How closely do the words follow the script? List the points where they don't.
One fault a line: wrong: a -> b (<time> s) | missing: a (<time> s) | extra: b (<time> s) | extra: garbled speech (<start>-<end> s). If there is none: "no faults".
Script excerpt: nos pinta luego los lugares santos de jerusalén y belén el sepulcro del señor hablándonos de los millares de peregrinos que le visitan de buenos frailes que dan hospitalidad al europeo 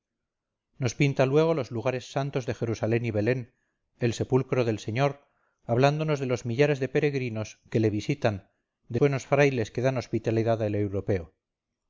no faults